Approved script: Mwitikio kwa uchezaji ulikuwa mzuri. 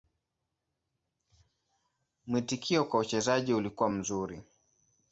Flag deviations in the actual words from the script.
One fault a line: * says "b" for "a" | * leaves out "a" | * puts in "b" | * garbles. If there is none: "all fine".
all fine